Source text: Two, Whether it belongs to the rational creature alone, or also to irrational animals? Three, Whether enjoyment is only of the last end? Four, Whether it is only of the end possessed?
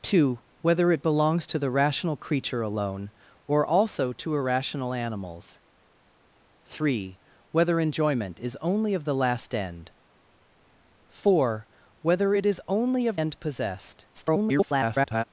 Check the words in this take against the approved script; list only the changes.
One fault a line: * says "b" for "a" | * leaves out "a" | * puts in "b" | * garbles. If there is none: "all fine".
* leaves out "the"
* garbles